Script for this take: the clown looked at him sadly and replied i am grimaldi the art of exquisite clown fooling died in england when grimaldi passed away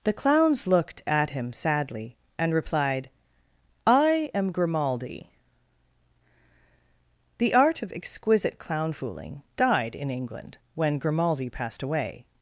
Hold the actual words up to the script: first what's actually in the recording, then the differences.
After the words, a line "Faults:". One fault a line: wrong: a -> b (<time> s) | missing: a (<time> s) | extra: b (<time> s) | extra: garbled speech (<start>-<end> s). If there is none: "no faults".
the clowns looked at him sadly and replied i am grimaldi the art of exquisite clown fooling died in england when grimaldi passed away
Faults:
wrong: clown -> clowns (0.1 s)